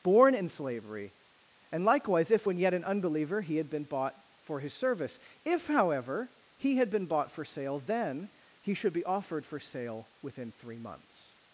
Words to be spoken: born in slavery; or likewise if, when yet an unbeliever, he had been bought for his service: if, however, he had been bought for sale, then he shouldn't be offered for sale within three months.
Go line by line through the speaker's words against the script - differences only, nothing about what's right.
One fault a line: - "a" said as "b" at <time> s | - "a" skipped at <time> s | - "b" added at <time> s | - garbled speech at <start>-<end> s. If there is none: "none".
- "or" said as "and" at 1.7 s
- "shouldn't" said as "should" at 8.7 s